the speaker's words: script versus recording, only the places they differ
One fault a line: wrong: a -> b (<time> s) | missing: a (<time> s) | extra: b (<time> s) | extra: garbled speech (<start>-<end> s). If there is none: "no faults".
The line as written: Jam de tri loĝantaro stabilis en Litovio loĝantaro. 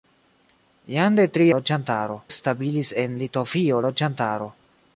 no faults